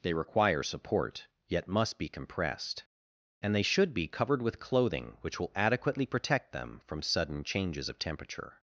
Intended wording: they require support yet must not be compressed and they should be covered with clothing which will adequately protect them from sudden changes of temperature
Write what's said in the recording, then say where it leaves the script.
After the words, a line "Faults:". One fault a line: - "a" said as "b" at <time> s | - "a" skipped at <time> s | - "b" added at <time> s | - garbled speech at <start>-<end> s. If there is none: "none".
they require support yet must be compressed and they should be covered with clothing which will adequately protect them from sudden changes of temperature
Faults:
- "not" skipped at 2.0 s